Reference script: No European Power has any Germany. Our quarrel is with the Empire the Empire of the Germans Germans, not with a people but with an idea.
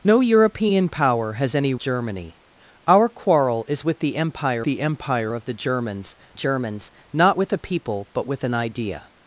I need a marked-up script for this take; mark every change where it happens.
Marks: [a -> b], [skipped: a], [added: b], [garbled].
No European Power has any Germany. Our quarrel is with the Empire the Empire of the Germans Germans, not with a people but with an idea.